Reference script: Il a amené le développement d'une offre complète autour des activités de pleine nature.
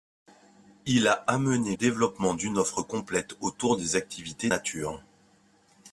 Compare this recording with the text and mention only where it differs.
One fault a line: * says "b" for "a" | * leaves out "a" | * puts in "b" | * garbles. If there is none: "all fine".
* leaves out "le"
* leaves out "de pleine"